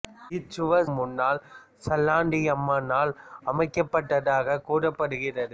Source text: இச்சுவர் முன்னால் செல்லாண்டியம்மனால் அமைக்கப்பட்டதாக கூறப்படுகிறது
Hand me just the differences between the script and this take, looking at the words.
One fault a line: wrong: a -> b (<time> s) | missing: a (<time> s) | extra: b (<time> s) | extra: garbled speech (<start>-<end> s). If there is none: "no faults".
no faults